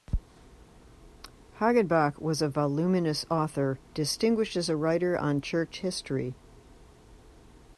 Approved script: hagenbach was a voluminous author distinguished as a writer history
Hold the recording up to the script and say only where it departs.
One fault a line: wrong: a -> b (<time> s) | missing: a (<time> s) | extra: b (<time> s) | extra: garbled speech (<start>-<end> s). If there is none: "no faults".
extra: on church (5.2 s)